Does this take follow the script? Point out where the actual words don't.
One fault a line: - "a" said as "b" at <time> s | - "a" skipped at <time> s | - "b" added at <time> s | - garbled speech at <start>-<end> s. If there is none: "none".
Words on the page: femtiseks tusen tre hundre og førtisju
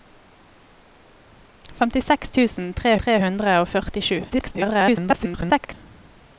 - "tre" added at 3.0 s
- garbled speech at 4.3-5.7 s